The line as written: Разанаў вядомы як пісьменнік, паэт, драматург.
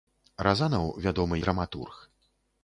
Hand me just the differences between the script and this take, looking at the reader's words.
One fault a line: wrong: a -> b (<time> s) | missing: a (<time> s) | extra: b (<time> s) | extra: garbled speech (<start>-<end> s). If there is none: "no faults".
missing: як пісьменнік паэт (1.4 s)